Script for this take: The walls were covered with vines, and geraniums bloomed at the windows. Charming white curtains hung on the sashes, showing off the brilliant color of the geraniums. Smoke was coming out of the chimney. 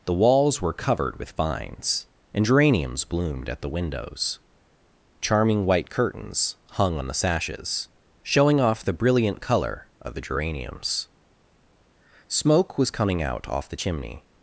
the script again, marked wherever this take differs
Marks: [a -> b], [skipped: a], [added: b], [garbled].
The walls were covered with vines, and geraniums bloomed at the windows. Charming white curtains hung on the sashes, showing off the brilliant color of the geraniums. Smoke was coming out [of -> off] the chimney.